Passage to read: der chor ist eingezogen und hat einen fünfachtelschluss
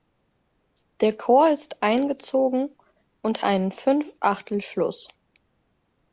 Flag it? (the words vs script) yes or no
yes